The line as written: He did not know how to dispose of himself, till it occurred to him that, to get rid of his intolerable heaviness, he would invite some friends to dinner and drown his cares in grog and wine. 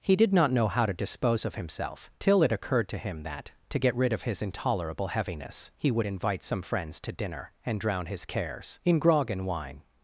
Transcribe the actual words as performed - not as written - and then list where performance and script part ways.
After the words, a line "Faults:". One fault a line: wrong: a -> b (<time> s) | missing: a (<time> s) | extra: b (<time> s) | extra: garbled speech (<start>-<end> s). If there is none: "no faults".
He did not know how to dispose of himself, till it occurred to him that, to get rid of his intolerable heaviness, he would invite some friends to dinner and drown his cares in grog and wine.
Faults:
no faults